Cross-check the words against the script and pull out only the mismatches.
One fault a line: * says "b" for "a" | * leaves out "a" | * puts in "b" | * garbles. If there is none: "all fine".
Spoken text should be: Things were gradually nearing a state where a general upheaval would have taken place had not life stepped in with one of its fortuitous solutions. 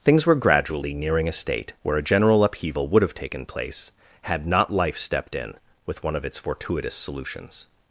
all fine